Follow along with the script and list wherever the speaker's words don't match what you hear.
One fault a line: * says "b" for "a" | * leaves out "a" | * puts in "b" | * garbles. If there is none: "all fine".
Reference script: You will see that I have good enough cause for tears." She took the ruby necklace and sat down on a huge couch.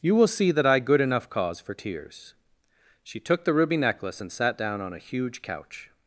* leaves out "have"